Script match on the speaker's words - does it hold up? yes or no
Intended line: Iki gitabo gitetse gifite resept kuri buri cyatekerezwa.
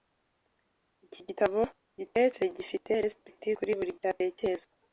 yes